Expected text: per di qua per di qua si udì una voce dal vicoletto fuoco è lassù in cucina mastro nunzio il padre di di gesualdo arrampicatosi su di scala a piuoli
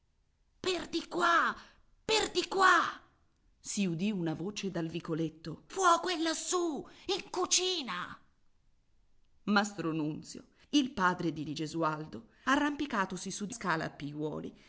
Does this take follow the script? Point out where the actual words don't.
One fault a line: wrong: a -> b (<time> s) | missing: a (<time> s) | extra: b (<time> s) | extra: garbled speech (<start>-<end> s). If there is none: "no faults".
no faults